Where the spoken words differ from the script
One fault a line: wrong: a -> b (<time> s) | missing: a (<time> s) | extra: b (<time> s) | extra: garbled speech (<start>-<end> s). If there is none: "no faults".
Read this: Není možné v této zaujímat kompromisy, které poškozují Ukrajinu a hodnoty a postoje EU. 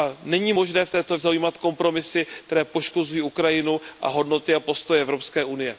no faults